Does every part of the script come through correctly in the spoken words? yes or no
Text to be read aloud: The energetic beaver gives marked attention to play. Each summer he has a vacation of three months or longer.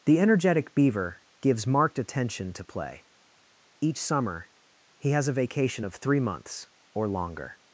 yes